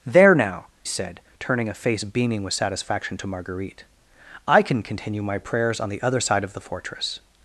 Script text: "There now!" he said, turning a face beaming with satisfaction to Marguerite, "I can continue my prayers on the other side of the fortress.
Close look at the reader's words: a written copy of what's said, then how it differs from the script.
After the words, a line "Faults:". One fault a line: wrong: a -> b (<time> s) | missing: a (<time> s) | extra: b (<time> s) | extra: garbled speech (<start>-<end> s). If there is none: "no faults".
"There now!" said, turning a face beaming with satisfaction to Marguerite, "I can continue my prayers on the other side of the fortress.
Faults:
missing: he (0.7 s)